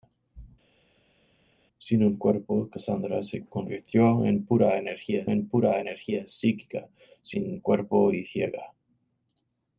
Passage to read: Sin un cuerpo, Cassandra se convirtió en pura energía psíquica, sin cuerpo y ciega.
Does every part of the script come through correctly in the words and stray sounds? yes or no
no